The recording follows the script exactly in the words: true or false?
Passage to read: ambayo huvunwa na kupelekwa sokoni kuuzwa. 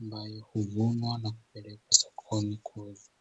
true